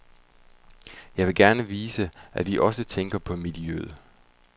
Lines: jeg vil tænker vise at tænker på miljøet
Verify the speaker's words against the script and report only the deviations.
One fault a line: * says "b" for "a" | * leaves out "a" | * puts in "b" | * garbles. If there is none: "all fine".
* says "gerne" for "tænker"
* puts in "vi også"